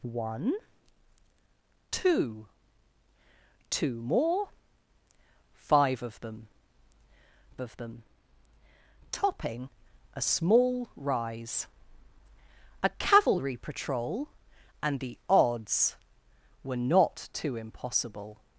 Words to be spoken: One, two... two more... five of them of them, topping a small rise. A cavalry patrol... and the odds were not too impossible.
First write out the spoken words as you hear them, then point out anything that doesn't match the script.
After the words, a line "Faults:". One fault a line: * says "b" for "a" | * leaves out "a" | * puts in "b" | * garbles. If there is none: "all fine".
One, two... two more... five of them of them, topping a small rise. A cavalry patrol... and the odds were not too impossible.
Faults:
all fine